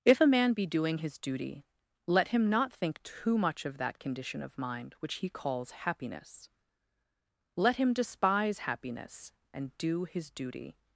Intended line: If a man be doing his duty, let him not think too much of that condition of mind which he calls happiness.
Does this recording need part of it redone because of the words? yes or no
yes